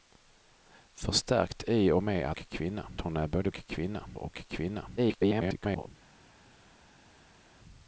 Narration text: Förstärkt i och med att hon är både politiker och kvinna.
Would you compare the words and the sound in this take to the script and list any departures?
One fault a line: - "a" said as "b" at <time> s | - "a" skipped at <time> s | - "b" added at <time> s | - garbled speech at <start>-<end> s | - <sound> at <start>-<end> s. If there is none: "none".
- "att" said as "kvinna" at 2.3 s
- "politiker" said as "kvinna" at 3.5 s
- garbled speech at 5.0-5.9 s